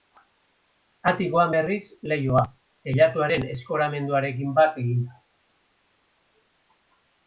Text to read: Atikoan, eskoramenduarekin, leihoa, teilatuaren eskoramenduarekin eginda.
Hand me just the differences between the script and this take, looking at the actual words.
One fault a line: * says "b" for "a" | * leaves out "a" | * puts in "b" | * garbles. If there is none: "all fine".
* says "berriz" for "eskoramenduarekin"
* puts in "bat"